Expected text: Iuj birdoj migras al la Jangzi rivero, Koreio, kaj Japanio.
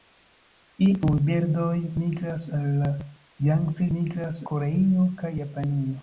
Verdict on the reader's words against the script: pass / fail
fail